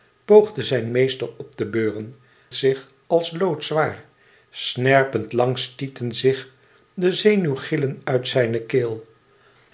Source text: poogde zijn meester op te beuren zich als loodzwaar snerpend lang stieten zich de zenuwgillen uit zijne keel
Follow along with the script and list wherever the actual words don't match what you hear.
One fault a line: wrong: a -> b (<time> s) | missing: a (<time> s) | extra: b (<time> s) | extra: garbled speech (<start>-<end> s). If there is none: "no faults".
no faults